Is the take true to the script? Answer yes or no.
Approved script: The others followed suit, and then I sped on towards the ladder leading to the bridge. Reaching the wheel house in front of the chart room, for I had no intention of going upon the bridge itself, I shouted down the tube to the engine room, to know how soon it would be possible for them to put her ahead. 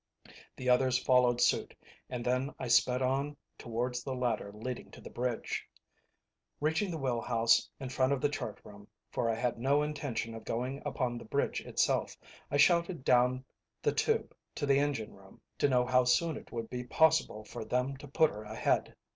yes